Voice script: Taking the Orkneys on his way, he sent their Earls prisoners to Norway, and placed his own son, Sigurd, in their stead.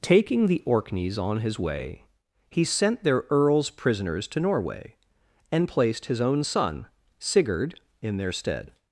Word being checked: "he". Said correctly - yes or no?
yes